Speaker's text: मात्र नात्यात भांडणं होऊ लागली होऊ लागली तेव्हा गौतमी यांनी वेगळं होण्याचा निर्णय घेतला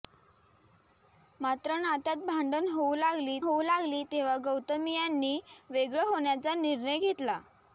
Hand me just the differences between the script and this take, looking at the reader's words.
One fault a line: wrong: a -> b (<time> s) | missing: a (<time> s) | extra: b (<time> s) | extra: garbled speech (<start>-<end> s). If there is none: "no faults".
no faults